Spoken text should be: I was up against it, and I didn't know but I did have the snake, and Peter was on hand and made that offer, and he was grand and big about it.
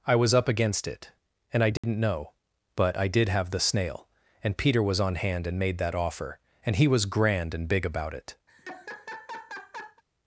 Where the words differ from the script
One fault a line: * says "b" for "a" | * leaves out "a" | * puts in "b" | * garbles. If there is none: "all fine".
* says "snail" for "snake"